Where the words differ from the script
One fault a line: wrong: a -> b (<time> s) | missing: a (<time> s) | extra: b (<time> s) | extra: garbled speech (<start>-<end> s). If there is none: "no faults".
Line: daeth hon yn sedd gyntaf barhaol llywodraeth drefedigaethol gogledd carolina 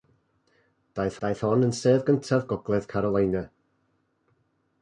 extra: daeth (1.2 s)
missing: barhaol llywodraeth drefedigaethol (2.5 s)